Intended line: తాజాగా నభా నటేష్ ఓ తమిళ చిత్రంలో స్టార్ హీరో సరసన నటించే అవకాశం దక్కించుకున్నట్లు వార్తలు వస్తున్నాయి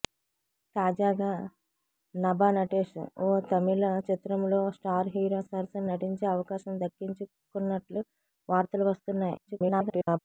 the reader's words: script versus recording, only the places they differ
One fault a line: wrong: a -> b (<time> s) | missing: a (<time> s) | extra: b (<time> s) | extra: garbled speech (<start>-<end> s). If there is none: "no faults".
extra: garbled speech (9.5-10.2 s)